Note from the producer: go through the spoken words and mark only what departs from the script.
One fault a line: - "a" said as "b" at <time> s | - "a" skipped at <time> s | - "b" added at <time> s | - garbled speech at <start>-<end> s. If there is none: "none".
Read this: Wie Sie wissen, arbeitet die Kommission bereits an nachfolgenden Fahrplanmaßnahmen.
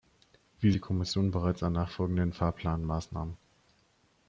- "Sie wissen arbeitet" skipped at 0.7 s